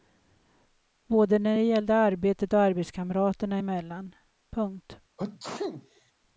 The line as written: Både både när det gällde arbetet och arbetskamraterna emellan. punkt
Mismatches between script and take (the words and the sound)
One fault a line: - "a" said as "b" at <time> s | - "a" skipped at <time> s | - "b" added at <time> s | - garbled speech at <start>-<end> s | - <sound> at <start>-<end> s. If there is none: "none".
- "både" skipped at 1.4 s
- sneeze at 5.2-6.1 s